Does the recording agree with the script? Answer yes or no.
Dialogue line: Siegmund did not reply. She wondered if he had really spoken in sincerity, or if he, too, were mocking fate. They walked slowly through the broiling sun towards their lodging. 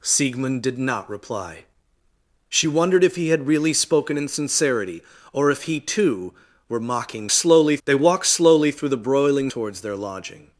no